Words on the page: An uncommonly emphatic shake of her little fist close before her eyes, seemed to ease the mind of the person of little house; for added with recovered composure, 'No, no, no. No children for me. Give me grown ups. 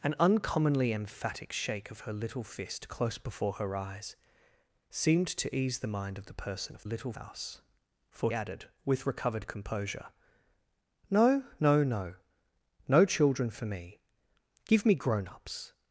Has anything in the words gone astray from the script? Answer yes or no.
no